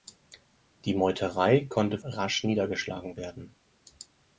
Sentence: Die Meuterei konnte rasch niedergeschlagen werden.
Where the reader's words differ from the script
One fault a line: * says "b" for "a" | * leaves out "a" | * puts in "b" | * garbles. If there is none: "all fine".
all fine